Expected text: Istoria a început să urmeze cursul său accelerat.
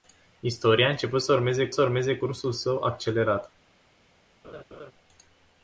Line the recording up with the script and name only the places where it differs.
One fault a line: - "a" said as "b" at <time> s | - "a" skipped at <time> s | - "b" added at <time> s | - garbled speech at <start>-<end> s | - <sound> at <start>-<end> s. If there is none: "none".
- "să urmeze" added at 1.7 s
- laugh at 4.4-4.9 s